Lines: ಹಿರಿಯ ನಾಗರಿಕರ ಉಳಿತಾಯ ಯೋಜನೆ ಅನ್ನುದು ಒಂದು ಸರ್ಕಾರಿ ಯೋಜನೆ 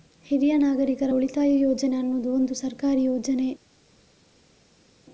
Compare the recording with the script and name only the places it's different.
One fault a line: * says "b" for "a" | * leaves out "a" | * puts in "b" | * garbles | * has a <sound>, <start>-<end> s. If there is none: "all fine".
all fine